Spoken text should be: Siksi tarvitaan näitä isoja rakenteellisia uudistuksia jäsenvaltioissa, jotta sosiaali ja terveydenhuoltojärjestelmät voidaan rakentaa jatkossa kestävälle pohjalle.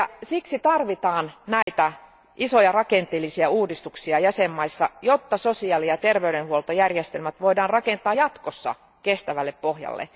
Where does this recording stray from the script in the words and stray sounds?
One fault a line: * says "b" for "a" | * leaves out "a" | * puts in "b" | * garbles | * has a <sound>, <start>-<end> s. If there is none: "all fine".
* has a dropout, 1.6-1.7 s